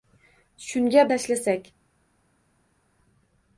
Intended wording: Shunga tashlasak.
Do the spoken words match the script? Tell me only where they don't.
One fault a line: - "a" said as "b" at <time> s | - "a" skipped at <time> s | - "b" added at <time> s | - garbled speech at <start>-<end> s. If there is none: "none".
none